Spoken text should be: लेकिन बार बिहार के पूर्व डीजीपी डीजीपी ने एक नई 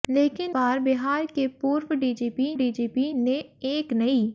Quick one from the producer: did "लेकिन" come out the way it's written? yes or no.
yes